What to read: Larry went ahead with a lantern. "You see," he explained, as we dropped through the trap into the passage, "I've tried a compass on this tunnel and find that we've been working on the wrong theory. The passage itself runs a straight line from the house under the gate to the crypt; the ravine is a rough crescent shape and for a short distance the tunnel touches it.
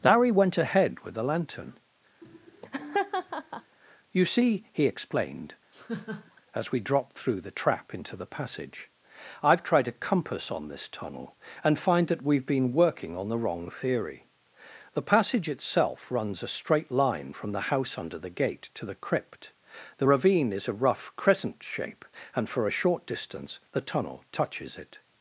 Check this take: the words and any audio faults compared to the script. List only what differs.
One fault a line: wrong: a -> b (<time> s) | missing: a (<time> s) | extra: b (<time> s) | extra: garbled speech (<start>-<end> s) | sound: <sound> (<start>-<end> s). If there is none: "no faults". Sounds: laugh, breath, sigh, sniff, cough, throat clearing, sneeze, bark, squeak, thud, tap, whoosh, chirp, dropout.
wrong: a -> the (1.1 s)
sound: laugh (2.2-3.8 s)
sound: laugh (5.7-6.4 s)